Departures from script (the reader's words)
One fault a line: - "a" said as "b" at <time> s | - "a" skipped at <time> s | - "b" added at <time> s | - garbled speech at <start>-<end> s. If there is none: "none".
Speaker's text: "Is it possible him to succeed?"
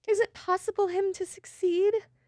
none